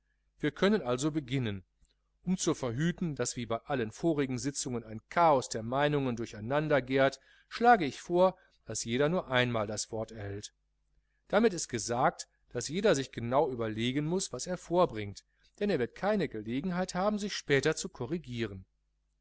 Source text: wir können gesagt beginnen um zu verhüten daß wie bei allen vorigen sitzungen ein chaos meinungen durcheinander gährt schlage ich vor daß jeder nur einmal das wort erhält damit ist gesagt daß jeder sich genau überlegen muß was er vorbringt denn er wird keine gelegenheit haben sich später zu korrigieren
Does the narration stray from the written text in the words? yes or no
yes